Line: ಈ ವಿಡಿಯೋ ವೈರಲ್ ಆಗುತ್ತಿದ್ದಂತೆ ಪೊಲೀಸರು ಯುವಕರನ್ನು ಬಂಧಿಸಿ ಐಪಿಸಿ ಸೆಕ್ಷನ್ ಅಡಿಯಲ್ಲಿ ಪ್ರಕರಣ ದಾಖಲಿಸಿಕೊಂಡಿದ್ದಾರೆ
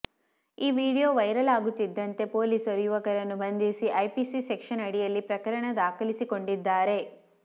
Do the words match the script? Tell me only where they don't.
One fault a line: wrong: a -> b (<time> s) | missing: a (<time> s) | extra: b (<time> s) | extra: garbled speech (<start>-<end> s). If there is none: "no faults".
no faults